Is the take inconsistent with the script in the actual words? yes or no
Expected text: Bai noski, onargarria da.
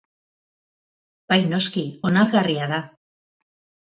no